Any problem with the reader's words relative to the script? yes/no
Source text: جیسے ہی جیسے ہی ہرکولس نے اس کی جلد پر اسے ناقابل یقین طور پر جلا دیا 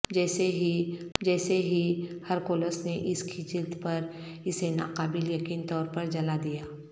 no